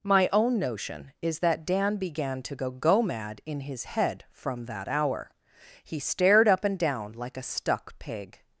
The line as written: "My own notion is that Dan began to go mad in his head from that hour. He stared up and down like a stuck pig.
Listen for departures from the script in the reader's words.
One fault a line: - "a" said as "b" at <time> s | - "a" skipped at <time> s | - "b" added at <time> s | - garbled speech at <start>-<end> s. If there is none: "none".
- "go" added at 2.7 s